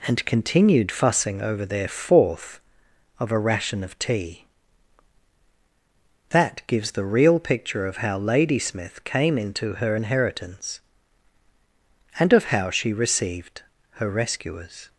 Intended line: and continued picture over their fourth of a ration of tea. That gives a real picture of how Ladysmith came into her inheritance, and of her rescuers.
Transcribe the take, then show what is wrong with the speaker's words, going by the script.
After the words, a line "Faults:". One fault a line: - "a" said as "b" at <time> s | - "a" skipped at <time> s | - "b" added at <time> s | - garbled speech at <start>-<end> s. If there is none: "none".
and continued fussing over their fourth of a ration of tea. That gives the real picture of how Ladysmith came into her inheritance, and of how she received her rescuers.
Faults:
- "picture" said as "fussing" at 0.9 s
- "a" said as "the" at 6.9 s
- "how she received" added at 12.5 s